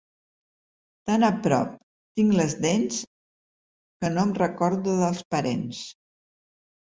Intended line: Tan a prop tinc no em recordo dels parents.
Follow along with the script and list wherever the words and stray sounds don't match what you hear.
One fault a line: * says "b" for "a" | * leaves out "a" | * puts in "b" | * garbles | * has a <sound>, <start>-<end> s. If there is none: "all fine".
* puts in "les dents que"